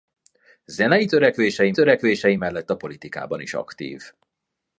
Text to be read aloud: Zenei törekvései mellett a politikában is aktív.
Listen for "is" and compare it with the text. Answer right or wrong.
right